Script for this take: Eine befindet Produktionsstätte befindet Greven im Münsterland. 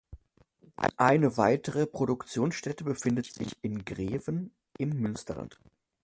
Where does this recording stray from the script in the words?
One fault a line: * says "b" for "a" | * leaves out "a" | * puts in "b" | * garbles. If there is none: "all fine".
* says "weitere" for "befindet"
* puts in "sich in"